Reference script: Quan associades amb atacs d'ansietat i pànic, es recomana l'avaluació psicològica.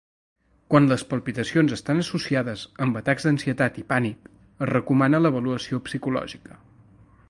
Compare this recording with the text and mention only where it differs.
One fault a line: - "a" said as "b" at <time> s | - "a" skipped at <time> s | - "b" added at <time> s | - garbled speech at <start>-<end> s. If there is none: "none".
- "les palpitacions estan" added at 0.9 s